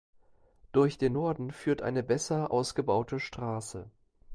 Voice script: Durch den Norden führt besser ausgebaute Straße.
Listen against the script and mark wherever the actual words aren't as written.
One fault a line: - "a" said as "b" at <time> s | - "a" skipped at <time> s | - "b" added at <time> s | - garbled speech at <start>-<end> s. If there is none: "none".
- "eine" added at 1.8 s